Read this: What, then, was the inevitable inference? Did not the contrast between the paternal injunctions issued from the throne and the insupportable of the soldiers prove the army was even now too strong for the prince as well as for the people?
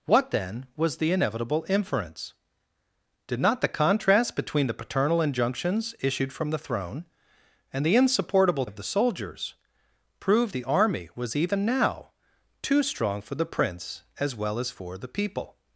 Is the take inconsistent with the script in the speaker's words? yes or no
no